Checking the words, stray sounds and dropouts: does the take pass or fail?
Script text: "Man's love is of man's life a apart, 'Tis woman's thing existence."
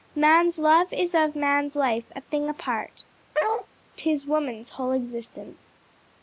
fail